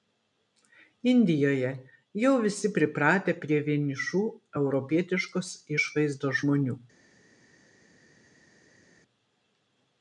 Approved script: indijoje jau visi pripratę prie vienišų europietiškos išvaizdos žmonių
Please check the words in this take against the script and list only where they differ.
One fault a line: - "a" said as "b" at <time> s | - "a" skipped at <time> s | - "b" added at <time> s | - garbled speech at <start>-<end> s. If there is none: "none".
none